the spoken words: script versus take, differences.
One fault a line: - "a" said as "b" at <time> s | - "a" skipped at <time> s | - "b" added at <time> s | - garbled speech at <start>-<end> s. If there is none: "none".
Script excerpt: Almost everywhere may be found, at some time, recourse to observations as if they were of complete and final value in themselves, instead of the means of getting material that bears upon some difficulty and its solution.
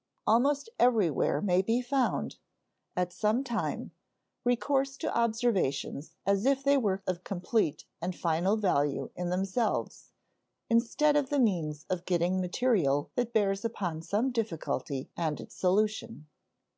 none